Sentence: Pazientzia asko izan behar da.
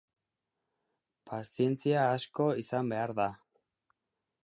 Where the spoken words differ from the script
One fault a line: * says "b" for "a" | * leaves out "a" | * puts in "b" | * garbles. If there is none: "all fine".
all fine